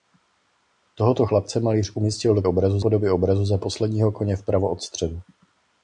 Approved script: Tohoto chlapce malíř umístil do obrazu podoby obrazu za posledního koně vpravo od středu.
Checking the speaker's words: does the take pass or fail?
pass